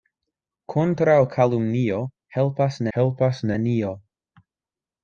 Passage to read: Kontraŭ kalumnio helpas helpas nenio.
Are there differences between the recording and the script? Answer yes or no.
no